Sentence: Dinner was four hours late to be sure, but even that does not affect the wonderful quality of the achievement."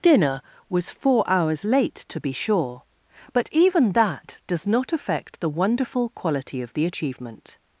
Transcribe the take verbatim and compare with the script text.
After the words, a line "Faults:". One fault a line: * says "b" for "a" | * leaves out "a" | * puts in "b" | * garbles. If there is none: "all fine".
Dinner was four hours late to be sure, but even that does not affect the wonderful quality of the achievement."
Faults:
all fine